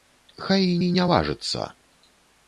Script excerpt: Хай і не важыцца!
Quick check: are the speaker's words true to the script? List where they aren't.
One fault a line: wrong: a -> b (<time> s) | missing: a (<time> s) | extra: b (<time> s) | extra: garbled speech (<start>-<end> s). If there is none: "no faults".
extra: і (0.8 s)